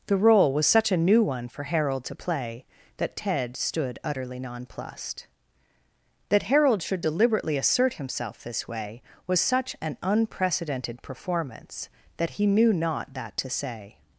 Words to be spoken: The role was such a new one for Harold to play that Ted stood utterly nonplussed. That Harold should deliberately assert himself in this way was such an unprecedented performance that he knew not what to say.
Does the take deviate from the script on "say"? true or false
false